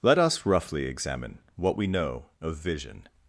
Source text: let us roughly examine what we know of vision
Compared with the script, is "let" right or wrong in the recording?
right